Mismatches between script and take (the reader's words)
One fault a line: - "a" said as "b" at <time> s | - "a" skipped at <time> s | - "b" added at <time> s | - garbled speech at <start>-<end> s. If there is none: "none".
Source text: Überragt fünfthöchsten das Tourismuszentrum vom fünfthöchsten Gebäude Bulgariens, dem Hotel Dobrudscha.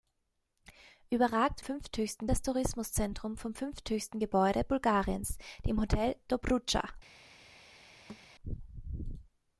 none